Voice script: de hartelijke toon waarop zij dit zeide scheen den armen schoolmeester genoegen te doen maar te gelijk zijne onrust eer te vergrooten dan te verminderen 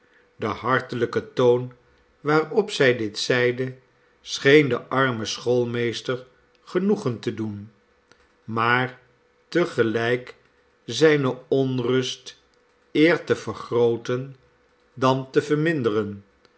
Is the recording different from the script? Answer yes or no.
no